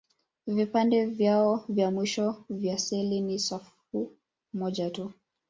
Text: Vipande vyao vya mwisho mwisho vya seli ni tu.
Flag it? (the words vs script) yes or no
yes